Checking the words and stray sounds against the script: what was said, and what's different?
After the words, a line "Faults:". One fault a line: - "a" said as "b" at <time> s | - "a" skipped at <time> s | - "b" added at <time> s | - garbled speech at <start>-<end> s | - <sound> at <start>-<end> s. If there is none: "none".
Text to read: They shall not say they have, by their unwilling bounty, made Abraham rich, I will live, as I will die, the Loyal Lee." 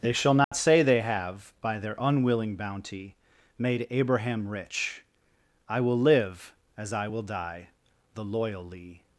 They shall not say they have, by their unwilling bounty, made Abraham rich, I will live, as I will die, the Loyal Lee."
Faults:
- dropout at 0.4-0.5 s